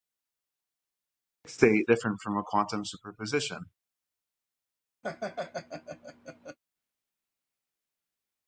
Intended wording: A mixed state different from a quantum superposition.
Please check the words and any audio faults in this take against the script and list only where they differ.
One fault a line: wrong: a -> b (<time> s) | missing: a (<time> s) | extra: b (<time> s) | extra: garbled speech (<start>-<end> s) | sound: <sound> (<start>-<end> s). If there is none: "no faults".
sound: laugh (5.0-6.6 s)